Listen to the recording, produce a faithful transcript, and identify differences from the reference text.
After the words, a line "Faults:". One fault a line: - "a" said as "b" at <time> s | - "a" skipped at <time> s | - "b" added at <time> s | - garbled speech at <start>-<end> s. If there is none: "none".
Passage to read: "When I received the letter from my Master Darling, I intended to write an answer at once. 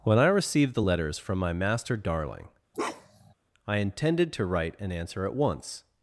"When I received the letters from my Master Darling, I intended to write an answer at once.
Faults:
- "letter" said as "letters" at 0.8 s